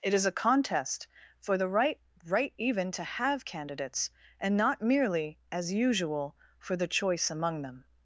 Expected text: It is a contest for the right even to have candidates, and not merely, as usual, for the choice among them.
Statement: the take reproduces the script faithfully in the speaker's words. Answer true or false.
false